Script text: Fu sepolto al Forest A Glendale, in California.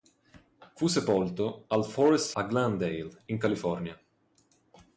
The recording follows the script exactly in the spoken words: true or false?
true